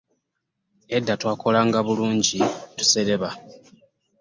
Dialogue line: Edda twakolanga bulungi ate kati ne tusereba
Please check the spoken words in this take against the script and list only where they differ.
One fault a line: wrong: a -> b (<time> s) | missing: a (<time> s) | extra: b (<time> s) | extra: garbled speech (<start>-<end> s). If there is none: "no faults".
missing: ate kati ne (2.4 s)